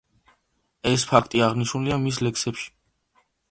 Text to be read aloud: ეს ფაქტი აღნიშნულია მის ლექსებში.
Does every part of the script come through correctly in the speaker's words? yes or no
yes